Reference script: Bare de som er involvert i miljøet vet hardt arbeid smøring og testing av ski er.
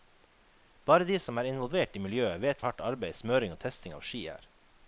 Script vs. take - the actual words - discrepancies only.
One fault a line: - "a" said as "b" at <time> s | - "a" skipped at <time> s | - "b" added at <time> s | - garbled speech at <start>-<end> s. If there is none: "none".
none